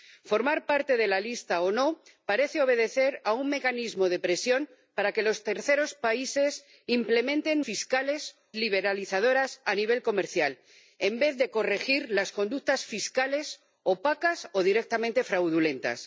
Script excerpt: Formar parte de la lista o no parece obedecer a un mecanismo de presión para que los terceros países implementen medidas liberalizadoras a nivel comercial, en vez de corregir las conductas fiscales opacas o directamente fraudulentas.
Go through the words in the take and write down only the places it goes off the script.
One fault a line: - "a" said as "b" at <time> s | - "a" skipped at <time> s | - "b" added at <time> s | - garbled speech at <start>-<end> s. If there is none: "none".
- "medidas" said as "fiscales" at 7.6 s